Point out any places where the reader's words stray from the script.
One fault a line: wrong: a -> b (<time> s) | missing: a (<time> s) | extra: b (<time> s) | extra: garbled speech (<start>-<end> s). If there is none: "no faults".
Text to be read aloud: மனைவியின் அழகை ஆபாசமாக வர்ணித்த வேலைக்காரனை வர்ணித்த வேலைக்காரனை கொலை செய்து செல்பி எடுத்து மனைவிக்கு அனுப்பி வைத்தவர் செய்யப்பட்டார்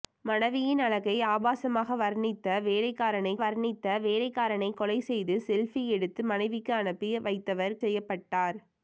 no faults